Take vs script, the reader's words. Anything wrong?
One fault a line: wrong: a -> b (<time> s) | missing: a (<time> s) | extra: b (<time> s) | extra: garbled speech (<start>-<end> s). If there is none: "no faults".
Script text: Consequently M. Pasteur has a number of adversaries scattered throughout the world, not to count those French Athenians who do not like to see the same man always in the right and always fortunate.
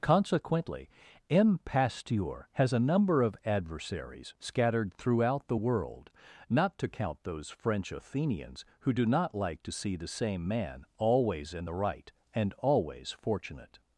no faults